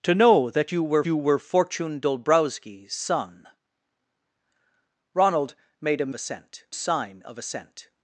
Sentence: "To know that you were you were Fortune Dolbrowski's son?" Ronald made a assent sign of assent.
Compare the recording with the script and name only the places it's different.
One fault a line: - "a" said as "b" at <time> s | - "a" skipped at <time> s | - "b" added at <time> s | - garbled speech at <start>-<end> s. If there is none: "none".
none